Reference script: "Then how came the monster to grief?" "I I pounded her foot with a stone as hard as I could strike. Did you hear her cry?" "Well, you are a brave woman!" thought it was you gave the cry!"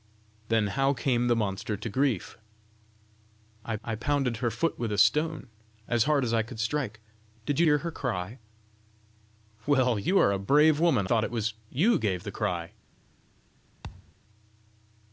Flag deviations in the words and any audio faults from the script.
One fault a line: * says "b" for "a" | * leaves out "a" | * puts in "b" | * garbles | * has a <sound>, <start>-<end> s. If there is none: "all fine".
* has a thud, 13.8-14.1 s